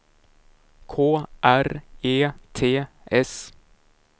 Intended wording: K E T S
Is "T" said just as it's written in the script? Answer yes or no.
yes